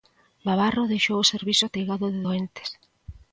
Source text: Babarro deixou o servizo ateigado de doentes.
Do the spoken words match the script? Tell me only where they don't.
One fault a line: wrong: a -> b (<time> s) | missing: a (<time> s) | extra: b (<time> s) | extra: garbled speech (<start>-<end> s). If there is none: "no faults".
no faults